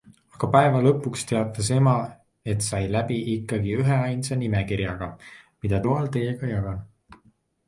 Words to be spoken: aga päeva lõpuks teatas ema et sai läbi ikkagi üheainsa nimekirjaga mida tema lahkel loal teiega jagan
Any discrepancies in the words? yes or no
yes